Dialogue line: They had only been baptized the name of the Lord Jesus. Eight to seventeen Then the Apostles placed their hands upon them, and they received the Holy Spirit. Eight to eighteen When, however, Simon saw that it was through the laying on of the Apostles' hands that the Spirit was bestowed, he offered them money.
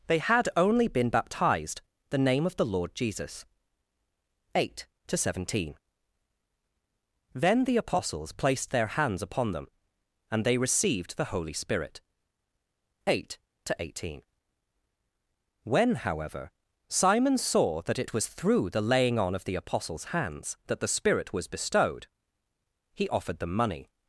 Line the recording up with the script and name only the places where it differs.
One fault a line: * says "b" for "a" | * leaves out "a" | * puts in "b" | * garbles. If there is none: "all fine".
all fine